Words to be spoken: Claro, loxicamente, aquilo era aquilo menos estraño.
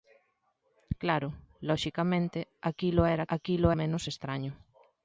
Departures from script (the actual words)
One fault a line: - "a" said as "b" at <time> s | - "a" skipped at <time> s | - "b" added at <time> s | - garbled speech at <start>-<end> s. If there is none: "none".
none